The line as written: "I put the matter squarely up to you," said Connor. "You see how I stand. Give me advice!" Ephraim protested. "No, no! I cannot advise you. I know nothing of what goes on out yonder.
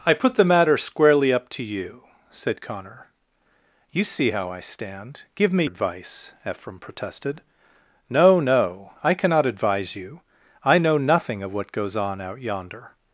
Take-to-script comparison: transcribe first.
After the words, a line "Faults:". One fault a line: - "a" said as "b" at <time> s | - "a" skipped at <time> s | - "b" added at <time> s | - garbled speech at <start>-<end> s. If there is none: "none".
"I put the matter squarely up to you," said Connor. "You see how I stand. Give me advice!" Ephraim protested. "No, no! I cannot advise you. I know nothing of what goes on out yonder.
Faults:
none